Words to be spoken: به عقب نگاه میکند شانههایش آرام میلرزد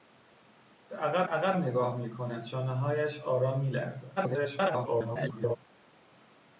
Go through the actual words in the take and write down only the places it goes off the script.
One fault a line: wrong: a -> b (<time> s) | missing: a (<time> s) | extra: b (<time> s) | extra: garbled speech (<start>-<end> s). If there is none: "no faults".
extra: عقب (1.3 s)
extra: garbled speech (4.2-5.6 s)